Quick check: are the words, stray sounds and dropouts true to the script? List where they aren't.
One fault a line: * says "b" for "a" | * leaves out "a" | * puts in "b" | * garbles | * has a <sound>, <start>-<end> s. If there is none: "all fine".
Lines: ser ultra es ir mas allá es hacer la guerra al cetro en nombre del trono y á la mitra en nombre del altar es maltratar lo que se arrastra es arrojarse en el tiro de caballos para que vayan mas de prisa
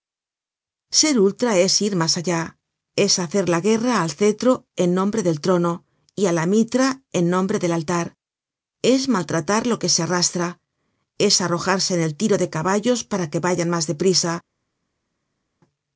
all fine